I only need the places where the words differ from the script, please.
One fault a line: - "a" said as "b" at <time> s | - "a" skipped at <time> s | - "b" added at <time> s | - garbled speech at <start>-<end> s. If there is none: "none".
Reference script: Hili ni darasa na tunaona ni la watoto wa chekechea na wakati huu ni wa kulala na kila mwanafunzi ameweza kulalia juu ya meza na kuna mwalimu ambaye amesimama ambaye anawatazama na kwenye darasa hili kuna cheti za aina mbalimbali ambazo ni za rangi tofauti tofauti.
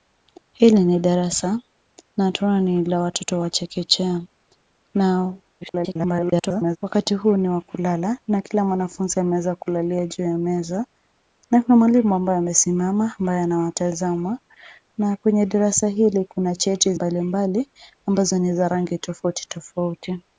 - garbled speech at 5.6-6.8 s
- "za aina" skipped at 16.9 s